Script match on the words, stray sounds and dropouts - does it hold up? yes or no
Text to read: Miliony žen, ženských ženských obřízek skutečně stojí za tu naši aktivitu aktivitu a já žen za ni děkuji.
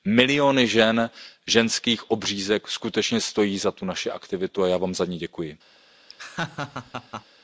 no